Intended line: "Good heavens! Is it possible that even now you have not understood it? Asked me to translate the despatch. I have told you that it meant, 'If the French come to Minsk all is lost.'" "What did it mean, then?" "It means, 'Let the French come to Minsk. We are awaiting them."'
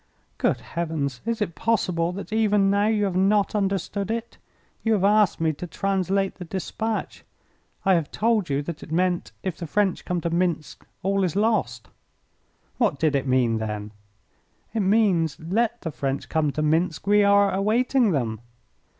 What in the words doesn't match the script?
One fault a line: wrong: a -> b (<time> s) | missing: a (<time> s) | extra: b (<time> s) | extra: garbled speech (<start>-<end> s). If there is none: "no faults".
extra: You have (4.8 s)